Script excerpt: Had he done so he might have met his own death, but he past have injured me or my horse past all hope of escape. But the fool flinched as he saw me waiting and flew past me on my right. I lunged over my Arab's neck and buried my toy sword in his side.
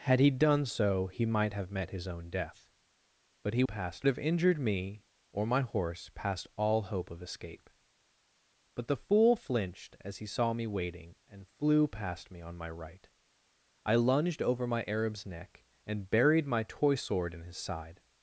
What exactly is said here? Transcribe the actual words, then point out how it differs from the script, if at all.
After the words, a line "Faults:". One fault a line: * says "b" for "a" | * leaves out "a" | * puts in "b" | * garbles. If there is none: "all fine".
Had he done so he might have met his own death, but he past have injured me or my horse past all hope of escape. But the fool flinched as he saw me waiting and flew past me on my right. I lunged over my Arab's neck and buried my toy sword in his side.
Faults:
all fine